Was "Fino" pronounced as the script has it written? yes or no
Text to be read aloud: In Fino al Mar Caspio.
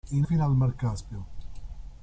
yes